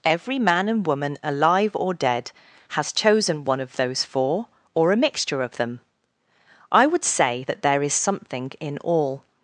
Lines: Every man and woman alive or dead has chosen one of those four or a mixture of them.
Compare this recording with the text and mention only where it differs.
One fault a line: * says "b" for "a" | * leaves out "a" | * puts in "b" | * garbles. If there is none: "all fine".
* puts in "I would say that there is something in all"